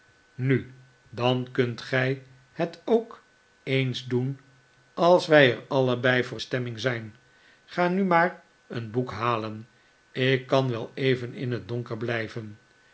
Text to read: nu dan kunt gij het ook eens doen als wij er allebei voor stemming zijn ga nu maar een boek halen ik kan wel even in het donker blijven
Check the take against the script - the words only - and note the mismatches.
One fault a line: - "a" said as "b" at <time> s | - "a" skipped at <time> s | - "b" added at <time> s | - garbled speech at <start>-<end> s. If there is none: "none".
none